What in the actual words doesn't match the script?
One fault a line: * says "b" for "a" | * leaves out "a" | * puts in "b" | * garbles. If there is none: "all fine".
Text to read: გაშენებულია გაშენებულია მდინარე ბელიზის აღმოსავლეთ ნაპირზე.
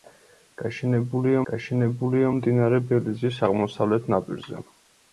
all fine